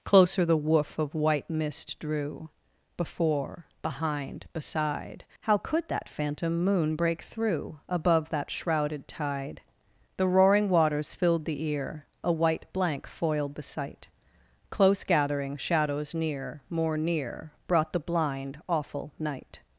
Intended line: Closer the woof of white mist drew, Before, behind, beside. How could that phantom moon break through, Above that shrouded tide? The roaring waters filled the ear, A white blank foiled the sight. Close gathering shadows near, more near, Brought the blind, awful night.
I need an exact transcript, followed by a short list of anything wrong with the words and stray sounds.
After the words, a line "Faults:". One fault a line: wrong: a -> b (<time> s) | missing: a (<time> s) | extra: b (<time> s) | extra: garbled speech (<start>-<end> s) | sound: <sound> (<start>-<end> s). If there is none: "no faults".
Closer the woof of white mist drew, Before, behind, beside. How could that phantom moon break through, Above that shrouded tide? The roaring waters filled the ear, A white blank foiled the sight. Close gathering shadows near, more near, Brought the blind, awful night.
Faults:
no faults